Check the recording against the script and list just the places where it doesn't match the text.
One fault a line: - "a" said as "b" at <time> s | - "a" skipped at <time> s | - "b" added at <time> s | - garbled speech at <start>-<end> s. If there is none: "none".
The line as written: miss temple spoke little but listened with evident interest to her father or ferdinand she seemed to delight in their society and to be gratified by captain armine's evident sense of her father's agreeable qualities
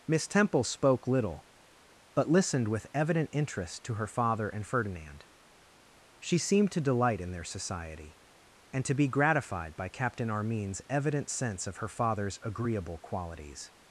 - "or" said as "and" at 4.5 s